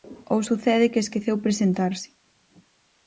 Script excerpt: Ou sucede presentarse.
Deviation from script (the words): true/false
true